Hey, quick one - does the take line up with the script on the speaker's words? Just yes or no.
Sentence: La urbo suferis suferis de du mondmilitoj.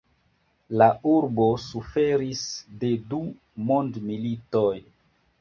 no